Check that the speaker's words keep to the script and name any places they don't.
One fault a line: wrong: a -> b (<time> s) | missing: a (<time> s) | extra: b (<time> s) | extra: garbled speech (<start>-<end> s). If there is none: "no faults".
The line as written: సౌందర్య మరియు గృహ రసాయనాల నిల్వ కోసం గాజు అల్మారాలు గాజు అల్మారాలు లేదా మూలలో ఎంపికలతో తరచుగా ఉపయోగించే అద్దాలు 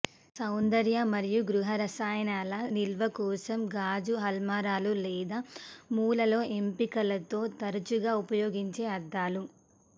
missing: గాజు అల్మారాలు (4.9 s)